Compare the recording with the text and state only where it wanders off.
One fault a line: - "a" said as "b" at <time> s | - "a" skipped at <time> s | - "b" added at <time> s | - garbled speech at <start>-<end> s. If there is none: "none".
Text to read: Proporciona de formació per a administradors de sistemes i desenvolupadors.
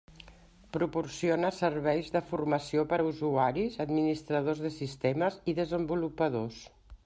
- "serveis" added at 1.6 s
- "usuaris" added at 3.1 s